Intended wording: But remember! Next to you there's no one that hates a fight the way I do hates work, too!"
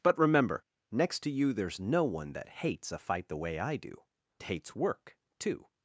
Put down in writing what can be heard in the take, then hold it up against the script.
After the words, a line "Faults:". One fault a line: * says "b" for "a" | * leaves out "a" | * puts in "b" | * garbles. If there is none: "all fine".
But remember! Next to you there's no one that hates a fight the way I do hates work, too!"
Faults:
all fine